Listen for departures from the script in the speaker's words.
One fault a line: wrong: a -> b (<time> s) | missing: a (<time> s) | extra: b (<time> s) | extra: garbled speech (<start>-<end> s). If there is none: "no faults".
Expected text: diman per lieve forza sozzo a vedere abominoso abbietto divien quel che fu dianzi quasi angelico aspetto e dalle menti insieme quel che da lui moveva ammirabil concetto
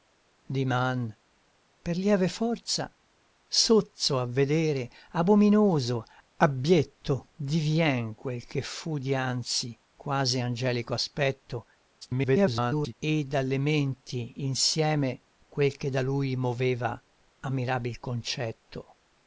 extra: garbled speech (12.0-12.9 s)